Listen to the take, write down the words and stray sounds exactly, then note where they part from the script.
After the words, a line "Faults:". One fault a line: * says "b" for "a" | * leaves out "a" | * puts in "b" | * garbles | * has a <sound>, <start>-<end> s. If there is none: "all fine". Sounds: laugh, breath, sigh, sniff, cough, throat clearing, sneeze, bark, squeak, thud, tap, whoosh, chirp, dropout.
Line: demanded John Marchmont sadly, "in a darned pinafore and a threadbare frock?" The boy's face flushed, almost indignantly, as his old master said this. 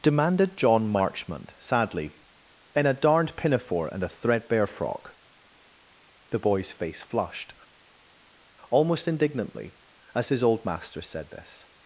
demanded John Marchmont sadly, "in a darned pinafore and a threadbare frock?" The boy's face flushed, almost indignantly, as his old master said this.
Faults:
all fine